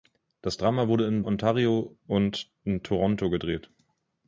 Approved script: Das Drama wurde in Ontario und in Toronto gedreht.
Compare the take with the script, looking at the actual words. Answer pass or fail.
pass